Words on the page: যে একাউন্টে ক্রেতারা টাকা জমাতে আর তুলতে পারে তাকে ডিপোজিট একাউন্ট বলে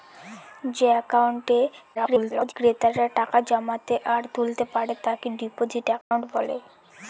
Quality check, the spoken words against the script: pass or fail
fail